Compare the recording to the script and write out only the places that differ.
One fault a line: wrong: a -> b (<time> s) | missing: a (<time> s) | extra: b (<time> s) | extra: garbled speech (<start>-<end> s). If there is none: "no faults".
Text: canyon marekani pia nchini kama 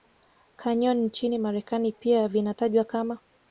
extra: nchini (1.0 s)
wrong: nchini -> vinatajwa (2.3 s)